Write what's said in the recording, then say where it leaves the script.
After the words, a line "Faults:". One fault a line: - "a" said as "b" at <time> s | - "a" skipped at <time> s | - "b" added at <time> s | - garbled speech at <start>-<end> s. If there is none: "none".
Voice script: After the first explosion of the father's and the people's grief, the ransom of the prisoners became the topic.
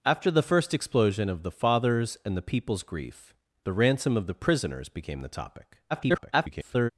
After the first explosion of the father's and the people's grief, the ransom of the prisoners became the topic. [garbled]
Faults:
- garbled speech at 5.9-6.9 s